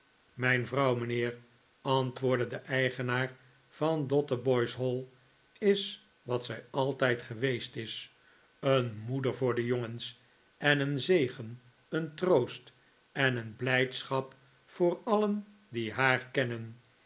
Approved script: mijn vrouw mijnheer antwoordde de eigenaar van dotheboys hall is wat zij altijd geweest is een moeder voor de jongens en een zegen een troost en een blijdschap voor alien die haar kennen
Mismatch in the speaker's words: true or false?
false